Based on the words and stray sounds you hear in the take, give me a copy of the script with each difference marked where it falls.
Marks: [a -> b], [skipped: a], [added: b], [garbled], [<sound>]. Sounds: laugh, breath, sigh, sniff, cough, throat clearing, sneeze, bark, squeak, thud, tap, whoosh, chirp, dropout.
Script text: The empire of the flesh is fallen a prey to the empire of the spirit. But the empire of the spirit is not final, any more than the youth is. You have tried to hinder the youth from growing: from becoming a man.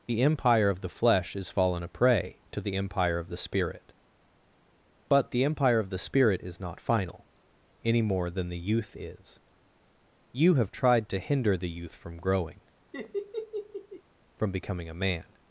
The empire of the flesh is fallen a prey to the empire of the spirit. But the empire of the spirit is not final, any more than the youth is. You have tried to hinder the youth from growing: [laugh] from becoming a man.